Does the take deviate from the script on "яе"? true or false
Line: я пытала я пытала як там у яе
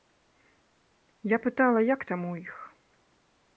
true